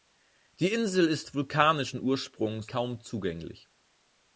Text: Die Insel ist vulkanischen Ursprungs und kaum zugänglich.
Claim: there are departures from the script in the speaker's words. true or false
true